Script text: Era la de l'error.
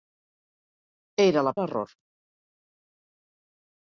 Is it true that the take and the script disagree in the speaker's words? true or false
false